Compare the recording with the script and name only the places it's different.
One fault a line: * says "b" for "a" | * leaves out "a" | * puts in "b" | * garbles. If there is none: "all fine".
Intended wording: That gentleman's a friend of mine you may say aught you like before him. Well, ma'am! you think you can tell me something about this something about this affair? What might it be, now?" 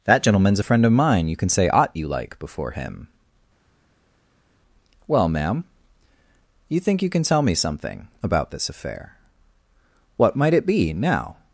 * says "can" for "may"
* leaves out "something about this"